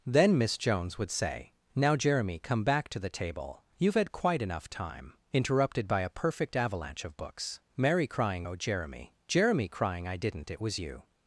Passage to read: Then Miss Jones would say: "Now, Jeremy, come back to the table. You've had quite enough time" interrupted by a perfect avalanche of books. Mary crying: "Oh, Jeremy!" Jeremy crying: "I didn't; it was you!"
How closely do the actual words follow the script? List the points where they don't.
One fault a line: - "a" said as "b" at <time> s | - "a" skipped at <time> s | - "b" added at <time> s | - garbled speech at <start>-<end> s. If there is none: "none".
none